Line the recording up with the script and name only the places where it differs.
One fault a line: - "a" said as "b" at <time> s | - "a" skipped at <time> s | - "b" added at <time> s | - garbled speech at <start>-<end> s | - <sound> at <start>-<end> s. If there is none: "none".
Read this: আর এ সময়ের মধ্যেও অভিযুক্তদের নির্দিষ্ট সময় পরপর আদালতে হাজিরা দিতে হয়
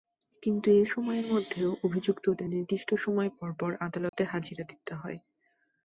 - "আর" said as "কিন্তু" at 0.4 s
- dropout at 4.1-4.1 s